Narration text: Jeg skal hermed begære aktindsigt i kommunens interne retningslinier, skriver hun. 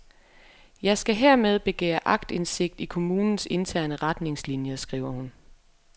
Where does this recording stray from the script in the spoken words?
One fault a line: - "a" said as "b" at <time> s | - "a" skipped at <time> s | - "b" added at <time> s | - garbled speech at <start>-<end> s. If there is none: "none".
none